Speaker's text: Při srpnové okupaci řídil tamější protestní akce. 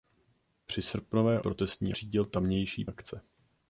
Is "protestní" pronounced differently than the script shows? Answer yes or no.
yes